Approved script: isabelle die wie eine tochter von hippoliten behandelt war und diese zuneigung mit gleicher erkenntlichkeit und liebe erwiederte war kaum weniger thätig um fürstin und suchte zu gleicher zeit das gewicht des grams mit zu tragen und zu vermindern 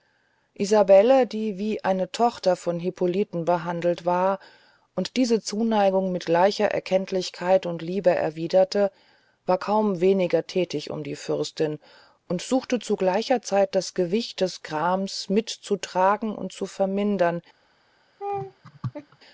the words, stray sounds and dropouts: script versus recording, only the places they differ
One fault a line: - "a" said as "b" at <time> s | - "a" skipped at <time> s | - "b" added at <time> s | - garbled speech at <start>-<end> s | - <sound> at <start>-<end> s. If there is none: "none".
- "die" added at 11.0 s
- laugh at 18.2-19.2 s